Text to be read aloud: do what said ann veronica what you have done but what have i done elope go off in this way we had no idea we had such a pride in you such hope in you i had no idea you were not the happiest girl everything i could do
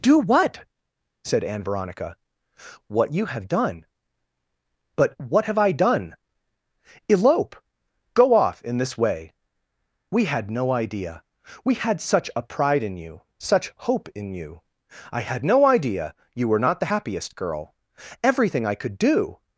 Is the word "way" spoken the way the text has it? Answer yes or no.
yes